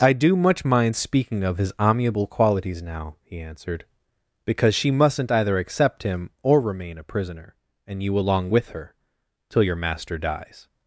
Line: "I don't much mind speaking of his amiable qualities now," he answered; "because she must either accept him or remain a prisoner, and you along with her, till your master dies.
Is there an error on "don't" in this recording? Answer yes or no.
yes